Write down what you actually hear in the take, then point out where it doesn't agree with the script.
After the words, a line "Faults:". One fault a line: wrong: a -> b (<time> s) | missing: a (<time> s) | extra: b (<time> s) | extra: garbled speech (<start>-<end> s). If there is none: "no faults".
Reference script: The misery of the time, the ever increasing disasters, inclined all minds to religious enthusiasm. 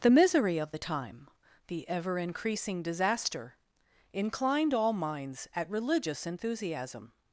The misery of the time, the ever increasing disaster, inclined all minds at religious enthusiasm.
Faults:
wrong: disasters -> disaster (2.8 s)
wrong: to -> at (5.5 s)